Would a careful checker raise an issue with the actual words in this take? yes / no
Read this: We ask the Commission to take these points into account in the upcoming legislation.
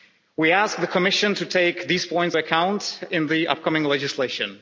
yes